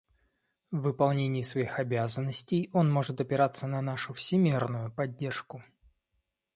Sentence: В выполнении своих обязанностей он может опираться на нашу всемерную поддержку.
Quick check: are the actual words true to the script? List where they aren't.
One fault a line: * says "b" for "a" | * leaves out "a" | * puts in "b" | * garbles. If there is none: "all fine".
all fine